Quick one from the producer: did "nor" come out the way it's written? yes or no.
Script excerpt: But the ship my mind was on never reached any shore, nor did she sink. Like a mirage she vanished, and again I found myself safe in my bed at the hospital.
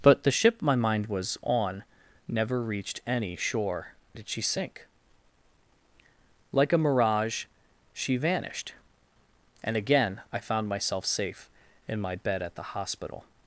no